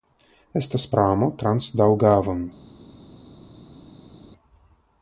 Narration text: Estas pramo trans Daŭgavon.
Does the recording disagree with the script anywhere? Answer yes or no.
no